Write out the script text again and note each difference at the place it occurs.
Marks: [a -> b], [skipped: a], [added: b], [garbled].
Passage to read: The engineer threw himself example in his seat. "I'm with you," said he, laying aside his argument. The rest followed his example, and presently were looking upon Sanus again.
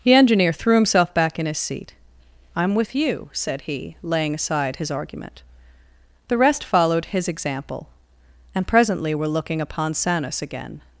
The engineer threw himself [example -> back] in his seat. "I'm with you," said he, laying aside his argument. The rest followed his example, and presently were looking upon Sanus again.